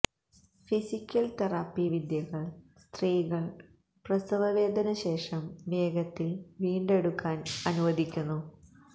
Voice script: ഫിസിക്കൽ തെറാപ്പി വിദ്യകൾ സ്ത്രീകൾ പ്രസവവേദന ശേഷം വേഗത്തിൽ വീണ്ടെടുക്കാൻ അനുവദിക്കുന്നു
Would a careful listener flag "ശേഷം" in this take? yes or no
no